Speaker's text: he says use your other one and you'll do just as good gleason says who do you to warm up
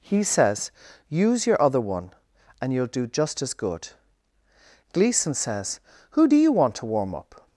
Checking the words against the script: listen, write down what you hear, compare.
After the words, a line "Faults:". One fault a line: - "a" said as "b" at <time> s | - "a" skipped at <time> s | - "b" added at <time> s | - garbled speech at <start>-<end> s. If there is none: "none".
he says use your other one and you'll do just as good gleason says who do you want to warm up
Faults:
- "want" added at 6.5 s